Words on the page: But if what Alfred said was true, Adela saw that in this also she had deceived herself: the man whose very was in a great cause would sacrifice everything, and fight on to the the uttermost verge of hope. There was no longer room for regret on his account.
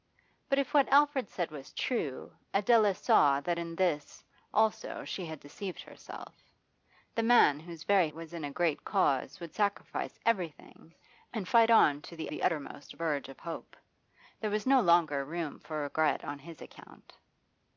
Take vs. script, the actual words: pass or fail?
pass